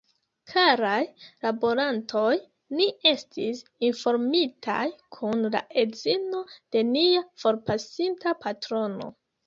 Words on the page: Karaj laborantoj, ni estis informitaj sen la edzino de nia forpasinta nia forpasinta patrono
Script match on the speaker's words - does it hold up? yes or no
no